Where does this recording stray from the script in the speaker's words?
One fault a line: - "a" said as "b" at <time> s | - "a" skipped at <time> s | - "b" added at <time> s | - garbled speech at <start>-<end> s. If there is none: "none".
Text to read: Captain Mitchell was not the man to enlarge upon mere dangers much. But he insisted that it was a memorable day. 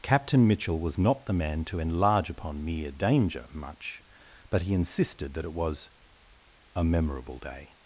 - "dangers" said as "danger" at 2.9 s